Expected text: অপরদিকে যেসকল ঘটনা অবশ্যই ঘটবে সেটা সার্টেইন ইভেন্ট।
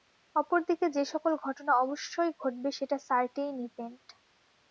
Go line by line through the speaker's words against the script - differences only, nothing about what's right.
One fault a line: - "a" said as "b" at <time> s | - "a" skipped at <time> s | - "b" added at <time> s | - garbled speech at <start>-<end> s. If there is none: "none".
none